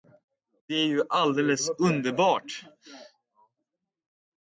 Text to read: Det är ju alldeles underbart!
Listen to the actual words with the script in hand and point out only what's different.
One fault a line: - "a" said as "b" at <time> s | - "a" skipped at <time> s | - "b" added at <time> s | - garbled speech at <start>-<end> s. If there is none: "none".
none